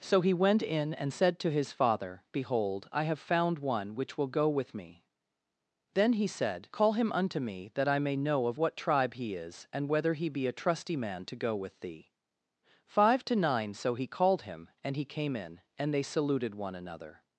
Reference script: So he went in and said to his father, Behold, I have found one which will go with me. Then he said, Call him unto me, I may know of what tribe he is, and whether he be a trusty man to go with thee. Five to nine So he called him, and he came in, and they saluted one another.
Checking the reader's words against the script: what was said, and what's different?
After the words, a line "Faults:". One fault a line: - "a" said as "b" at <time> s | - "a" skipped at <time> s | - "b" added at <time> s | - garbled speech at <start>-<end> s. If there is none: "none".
So he went in and said to his father, Behold, I have found one which will go with me. Then he said, Call him unto me, that I may know of what tribe he is, and whether he be a trusty man to go with thee. Five to nine So he called him, and he came in, and they saluted one another.
Faults:
- "that" added at 7.7 s